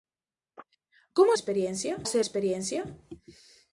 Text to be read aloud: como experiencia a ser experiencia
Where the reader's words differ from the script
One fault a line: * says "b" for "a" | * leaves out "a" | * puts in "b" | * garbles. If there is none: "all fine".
all fine